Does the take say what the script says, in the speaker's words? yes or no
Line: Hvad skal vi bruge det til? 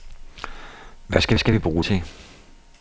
no